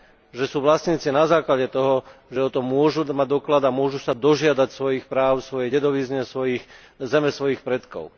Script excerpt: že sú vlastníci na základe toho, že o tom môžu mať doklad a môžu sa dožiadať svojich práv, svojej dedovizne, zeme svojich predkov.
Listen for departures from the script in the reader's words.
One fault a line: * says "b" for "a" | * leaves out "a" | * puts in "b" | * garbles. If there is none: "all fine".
all fine